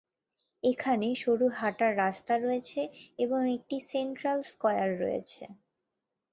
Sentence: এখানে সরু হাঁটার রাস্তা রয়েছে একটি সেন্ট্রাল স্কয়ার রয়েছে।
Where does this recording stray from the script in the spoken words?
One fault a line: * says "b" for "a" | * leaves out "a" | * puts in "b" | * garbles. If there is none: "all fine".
* puts in "এবং"